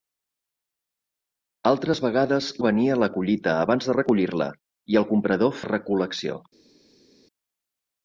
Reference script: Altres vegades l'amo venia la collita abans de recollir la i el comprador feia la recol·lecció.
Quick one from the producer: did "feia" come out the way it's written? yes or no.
no